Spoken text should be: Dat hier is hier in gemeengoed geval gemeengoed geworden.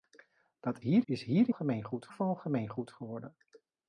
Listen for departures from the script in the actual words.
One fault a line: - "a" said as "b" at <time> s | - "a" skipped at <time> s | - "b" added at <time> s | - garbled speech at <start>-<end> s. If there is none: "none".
none